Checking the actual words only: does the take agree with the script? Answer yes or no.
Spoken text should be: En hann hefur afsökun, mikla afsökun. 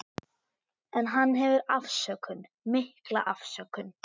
yes